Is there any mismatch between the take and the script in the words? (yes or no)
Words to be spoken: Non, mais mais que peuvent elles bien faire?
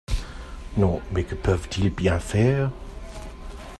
yes